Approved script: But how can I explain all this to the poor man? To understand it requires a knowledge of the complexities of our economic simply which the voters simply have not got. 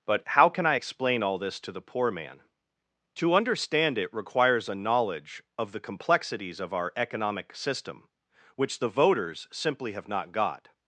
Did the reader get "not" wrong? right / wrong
right